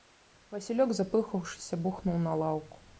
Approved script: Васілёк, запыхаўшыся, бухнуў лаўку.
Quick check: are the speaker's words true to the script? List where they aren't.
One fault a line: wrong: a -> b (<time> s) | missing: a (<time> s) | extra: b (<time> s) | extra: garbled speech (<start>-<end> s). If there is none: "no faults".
extra: на (2.3 s)